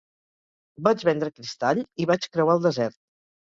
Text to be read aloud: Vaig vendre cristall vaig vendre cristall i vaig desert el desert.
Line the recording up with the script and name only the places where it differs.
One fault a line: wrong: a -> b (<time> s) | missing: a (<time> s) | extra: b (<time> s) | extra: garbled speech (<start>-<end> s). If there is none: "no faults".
missing: vaig vendre cristall (1.8 s)
wrong: desert -> creuar (2.4 s)